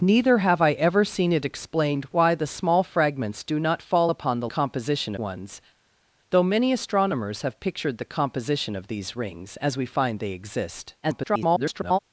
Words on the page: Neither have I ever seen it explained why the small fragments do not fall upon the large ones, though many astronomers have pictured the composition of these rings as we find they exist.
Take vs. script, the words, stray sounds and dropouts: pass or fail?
fail